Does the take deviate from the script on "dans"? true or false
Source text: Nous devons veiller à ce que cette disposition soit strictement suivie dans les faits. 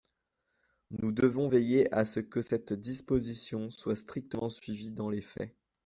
false